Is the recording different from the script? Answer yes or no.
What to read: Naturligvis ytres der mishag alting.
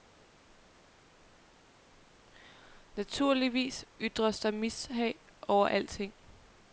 yes